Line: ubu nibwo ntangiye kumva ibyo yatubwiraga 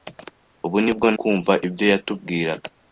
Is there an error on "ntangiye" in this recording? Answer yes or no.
yes